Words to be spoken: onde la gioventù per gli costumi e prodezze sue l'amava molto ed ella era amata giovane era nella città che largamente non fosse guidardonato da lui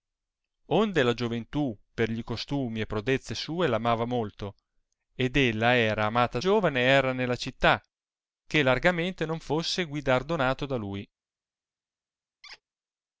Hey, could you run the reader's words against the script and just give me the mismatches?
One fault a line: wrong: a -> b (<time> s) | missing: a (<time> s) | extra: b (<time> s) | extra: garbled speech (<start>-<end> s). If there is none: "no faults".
no faults